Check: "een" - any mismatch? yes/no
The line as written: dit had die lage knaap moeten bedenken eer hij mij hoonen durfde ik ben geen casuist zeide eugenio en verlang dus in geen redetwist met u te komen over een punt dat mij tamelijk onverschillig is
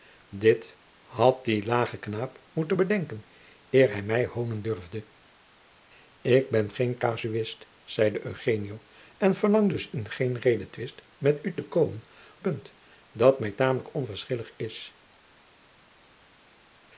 yes